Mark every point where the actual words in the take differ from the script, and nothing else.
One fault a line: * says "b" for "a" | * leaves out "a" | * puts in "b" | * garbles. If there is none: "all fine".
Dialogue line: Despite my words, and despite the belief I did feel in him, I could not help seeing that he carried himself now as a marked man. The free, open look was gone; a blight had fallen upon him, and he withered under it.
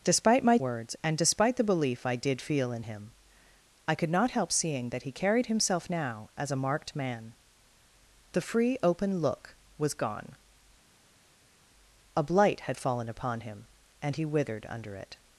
all fine